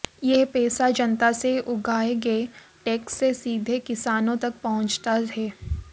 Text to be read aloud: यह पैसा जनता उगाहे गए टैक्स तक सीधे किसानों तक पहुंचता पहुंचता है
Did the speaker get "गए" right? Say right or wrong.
right